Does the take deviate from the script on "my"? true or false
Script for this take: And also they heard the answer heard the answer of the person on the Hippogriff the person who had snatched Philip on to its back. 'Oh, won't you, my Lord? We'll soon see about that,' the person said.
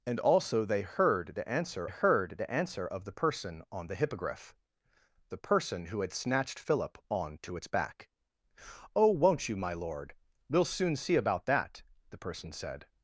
false